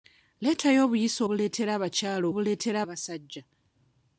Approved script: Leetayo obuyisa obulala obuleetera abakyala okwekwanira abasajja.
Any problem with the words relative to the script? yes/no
yes